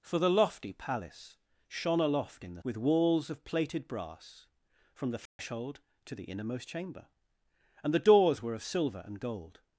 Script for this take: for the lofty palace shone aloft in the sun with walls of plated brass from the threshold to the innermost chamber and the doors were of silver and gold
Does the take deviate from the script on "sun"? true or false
true